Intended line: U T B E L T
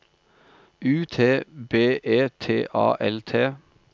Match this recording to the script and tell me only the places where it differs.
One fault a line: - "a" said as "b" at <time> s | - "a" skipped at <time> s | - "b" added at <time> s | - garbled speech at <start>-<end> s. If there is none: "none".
- "T A" added at 2.4 s